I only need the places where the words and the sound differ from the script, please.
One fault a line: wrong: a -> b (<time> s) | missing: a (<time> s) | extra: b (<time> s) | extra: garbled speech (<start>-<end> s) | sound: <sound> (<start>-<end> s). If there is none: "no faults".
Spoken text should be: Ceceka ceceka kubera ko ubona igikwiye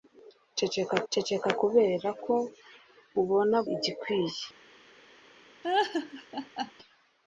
sound: laugh (5.6-6.7 s)